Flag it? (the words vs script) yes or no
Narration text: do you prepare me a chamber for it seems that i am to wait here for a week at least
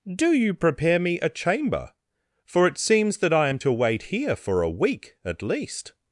no